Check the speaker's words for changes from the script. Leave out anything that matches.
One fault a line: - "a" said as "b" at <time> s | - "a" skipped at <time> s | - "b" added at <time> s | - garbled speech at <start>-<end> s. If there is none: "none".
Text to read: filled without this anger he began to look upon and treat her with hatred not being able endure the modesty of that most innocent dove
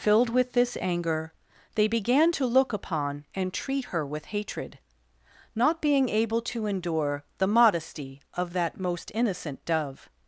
- "without" said as "with" at 0.3 s
- "he" said as "they" at 1.8 s
- "to" added at 6.5 s